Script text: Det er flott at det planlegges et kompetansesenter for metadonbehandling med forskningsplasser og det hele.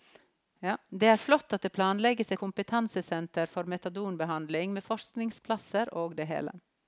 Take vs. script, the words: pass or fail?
fail